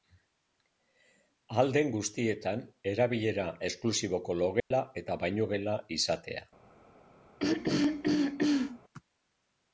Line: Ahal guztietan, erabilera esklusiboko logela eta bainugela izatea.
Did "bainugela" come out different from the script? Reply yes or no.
no